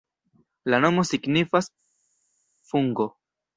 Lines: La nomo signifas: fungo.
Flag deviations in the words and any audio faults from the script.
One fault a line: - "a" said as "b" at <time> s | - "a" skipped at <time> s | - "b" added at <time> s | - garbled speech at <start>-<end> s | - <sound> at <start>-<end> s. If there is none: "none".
none